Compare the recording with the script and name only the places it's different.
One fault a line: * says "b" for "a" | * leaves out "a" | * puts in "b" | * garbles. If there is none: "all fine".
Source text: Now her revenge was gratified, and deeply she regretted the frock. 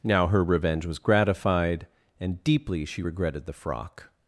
all fine